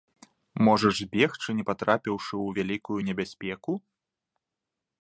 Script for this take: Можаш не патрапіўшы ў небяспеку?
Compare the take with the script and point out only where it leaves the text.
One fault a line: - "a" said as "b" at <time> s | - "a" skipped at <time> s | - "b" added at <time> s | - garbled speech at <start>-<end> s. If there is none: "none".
- "збегчы" added at 1.0 s
- "вялікую" added at 2.6 s